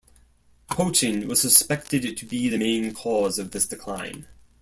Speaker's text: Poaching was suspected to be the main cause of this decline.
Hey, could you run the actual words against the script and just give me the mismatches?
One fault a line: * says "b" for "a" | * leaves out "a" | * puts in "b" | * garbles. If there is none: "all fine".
all fine